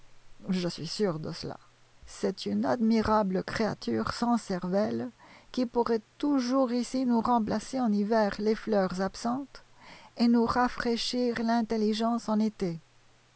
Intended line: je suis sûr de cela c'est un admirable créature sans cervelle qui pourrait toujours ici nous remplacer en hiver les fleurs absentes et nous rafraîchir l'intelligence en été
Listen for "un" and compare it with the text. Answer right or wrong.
wrong